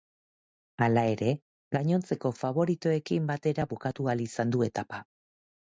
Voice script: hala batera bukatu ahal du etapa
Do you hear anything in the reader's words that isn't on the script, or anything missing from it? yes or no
yes